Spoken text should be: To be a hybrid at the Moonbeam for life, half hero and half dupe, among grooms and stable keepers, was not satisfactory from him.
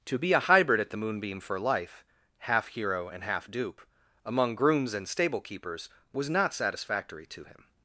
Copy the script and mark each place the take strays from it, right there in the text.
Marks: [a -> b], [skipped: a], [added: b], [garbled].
To be a hybrid at the Moonbeam for life, half hero and half dupe, among grooms and stable keepers, was not satisfactory [from -> to] him.